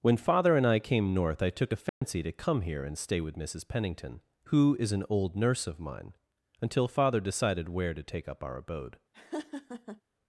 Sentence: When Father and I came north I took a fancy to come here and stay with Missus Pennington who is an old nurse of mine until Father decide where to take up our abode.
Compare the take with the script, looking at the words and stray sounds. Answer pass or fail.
fail